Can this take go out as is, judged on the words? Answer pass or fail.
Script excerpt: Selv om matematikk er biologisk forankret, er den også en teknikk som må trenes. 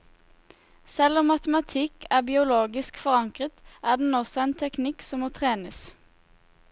pass